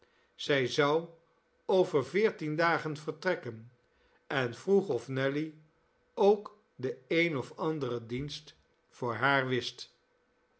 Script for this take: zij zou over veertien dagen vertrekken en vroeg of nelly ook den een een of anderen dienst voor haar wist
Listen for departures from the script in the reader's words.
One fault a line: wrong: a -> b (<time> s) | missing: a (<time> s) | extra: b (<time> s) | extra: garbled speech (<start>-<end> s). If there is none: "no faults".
missing: een (7.4 s)